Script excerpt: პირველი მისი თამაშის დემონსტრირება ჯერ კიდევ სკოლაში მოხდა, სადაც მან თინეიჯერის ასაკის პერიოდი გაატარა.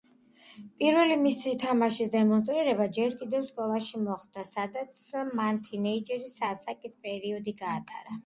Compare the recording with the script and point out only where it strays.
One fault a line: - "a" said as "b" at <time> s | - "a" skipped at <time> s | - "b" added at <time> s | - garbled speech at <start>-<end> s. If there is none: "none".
none